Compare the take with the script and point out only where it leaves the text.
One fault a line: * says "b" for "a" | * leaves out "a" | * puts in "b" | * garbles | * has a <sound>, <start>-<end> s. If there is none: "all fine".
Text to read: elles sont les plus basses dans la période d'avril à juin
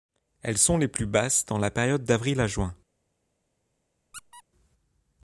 * has a squeak, 4.1-4.4 s